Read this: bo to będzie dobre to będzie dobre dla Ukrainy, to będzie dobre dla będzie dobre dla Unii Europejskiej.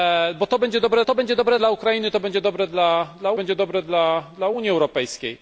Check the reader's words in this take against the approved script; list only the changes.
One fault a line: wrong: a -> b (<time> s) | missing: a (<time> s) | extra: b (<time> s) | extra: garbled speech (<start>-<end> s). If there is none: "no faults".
no faults